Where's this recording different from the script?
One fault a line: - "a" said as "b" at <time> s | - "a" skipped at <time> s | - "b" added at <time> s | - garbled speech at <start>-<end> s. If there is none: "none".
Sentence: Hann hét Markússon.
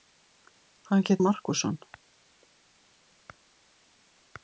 none